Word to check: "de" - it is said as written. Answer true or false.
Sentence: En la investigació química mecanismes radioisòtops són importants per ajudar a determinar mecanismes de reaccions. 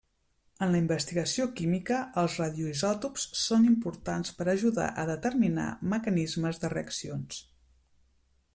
true